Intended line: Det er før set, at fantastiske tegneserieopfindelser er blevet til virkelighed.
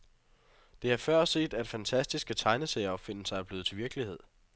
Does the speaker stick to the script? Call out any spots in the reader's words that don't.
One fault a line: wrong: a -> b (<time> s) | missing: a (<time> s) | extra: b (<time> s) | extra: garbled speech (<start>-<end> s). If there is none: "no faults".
no faults